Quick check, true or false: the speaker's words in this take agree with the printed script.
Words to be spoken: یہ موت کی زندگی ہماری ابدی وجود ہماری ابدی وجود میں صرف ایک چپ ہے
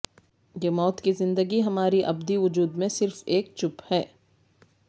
false